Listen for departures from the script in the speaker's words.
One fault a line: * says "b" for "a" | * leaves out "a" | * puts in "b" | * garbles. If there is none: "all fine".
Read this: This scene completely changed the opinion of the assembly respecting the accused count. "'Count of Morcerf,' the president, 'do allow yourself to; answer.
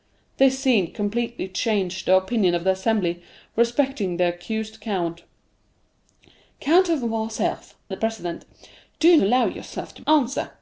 all fine